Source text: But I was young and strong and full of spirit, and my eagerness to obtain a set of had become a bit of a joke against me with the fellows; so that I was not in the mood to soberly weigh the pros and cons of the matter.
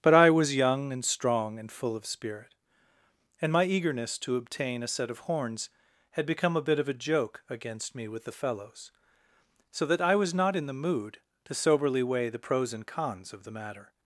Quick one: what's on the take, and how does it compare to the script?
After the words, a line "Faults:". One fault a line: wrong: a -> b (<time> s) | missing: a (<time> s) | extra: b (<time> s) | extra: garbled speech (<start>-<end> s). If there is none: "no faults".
But I was young and strong and full of spirit, and my eagerness to obtain a set of horns had become a bit of a joke against me with the fellows; so that I was not in the mood to soberly weigh the pros and cons of the matter.
Faults:
extra: horns (5.2 s)